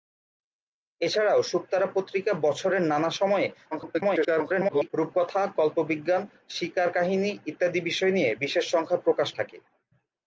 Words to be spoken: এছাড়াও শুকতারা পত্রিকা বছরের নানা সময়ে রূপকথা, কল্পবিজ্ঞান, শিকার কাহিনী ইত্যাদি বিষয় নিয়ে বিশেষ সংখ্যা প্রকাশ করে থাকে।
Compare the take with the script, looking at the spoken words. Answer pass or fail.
fail